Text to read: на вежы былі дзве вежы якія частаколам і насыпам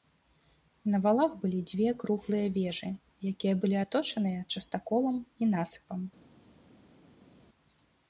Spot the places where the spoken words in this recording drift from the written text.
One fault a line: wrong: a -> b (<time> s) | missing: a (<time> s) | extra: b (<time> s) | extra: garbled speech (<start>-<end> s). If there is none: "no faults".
wrong: вежы -> валах (1.0 s)
extra: круглыя (2.0 s)
extra: былі аточаныя (3.6 s)